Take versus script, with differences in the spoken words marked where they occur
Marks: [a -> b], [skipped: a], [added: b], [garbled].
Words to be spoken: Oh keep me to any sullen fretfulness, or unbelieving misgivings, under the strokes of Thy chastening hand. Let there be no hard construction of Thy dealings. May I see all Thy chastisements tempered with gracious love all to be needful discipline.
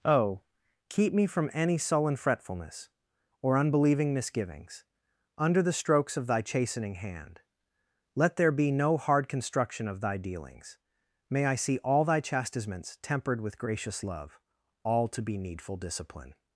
Oh keep me [to -> from] any sullen fretfulness, or unbelieving misgivings, under the strokes of Thy chastening hand. Let there be no hard construction of Thy dealings. May I see all Thy chastisements tempered with gracious love all to be needful discipline.